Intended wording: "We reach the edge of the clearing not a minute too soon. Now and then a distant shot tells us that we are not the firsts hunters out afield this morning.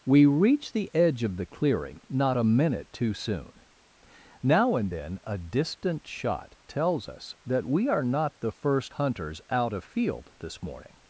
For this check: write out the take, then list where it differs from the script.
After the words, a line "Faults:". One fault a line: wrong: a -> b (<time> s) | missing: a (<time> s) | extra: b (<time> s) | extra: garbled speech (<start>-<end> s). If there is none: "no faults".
"We reach the edge of the clearing not a minute too soon. Now and then a distant shot tells us that we are not the first hunters out afield this morning.
Faults:
wrong: firsts -> first (8.5 s)